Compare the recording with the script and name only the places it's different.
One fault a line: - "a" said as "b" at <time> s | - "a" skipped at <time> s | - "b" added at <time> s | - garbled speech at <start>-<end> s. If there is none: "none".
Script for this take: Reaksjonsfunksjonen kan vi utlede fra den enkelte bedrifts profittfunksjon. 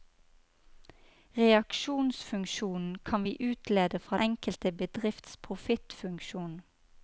- "den" skipped at 4.2 s